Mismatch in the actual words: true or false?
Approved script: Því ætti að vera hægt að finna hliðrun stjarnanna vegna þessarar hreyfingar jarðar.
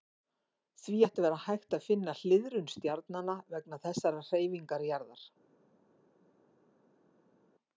false